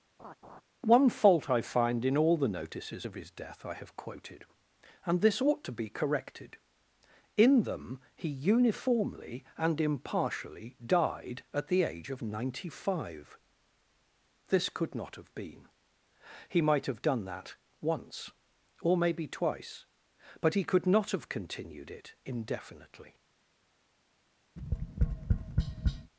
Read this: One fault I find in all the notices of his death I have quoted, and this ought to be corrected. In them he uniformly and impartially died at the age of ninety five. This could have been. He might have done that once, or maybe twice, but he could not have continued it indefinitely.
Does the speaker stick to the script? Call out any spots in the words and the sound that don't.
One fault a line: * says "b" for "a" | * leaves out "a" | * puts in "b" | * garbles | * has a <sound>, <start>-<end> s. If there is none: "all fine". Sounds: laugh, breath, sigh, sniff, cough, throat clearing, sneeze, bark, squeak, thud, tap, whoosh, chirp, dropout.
* has a laugh, 0.2-0.6 s
* puts in "not"
* has a tap, 24.6-26.1 s